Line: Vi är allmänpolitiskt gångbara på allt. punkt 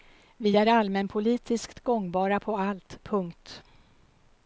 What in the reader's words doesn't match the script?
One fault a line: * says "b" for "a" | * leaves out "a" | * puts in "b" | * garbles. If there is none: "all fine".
all fine